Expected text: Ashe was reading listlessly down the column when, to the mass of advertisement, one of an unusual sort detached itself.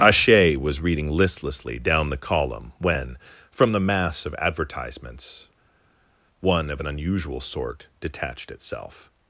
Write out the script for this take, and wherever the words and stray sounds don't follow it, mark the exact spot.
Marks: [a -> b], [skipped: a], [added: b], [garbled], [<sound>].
Ashe was reading listlessly down the column when, [to -> from] the mass of [advertisement, -> advertisements] one of an unusual sort detached itself.